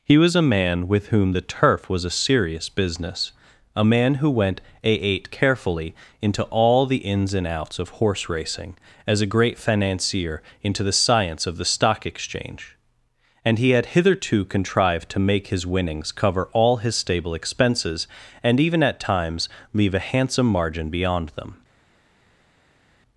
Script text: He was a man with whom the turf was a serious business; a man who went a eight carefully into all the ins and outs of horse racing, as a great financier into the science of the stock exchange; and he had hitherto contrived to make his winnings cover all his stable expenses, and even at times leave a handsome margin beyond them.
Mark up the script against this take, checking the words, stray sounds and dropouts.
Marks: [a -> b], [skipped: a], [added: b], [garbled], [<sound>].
He was a man with whom the turf was a serious business; a man who went a eight carefully into all the ins and outs of horse racing, as a great financier into the science of the stock exchange; and he had hitherto contrived to make his winnings cover all his stable expenses, and even at times leave a handsome margin beyond them.